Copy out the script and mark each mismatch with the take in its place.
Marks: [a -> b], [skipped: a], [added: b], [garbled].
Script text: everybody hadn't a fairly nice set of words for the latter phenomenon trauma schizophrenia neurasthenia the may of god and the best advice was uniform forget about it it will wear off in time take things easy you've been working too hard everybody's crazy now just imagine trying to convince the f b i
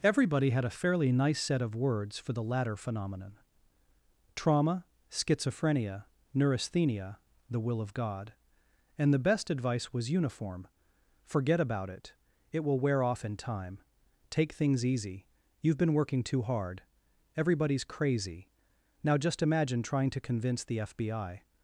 everybody [hadn't -> had] a fairly nice set of words for the latter phenomenon trauma schizophrenia neurasthenia the [may -> will] of god and the best advice was uniform forget about it it will wear off in time take things easy you've been working too hard everybody's crazy now just imagine trying to convince the f b i